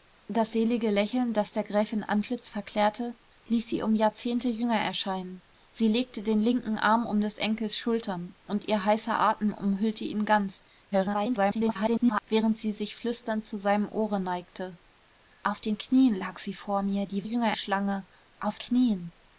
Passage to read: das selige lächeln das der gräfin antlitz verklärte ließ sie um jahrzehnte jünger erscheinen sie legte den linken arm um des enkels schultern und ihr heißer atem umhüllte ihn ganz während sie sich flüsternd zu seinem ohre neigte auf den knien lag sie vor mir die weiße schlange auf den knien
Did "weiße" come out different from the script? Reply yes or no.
yes